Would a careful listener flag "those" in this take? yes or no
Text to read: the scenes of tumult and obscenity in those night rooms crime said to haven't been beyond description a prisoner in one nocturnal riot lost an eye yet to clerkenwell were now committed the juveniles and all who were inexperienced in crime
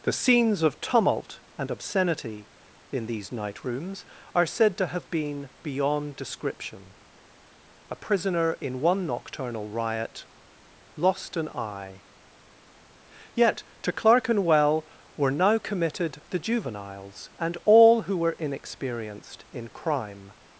yes